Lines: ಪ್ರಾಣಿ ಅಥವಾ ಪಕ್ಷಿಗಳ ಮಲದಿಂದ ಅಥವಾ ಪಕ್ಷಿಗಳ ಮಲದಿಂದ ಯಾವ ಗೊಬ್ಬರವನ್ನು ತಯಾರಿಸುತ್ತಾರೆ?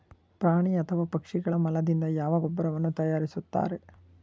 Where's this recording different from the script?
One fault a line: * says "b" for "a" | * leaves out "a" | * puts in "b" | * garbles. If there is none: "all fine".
* leaves out "ಅಥವಾ ಪಕ್ಷಿಗಳ ಮಲದಿಂದ"